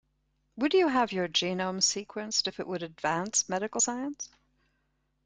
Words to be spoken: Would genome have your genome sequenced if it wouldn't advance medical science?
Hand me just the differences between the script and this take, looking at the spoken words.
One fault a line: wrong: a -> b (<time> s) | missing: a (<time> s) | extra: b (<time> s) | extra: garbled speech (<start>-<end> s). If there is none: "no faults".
wrong: genome -> you (0.7 s)
wrong: wouldn't -> would (2.7 s)